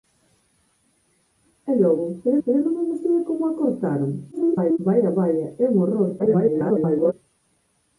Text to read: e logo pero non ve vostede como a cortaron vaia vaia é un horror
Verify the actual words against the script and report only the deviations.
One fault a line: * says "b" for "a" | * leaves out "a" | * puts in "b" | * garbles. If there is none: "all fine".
* puts in "pero"
* garbles
* garbles